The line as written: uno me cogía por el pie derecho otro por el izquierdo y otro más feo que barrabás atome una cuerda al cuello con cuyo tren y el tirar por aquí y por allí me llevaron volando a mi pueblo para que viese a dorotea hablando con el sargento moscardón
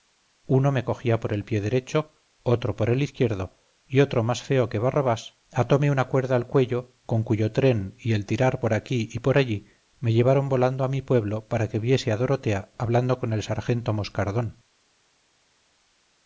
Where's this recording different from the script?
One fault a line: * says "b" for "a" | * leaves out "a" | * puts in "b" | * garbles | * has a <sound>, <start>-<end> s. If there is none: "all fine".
all fine